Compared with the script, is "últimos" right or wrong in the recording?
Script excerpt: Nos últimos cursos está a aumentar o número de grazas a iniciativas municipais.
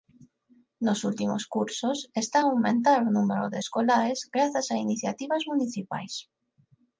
right